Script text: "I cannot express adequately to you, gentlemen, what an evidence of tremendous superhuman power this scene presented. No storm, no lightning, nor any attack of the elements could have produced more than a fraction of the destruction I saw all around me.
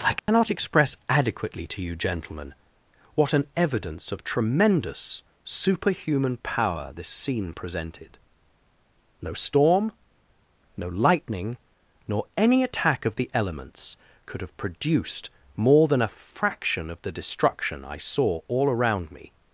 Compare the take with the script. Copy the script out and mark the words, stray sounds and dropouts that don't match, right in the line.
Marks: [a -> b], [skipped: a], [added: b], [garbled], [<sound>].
"I cannot [dropout] express adequately to you, gentlemen, what an evidence of tremendous superhuman power this scene presented. No storm, no lightning, nor any attack of the elements could have produced more than a fraction of the destruction I saw all around me.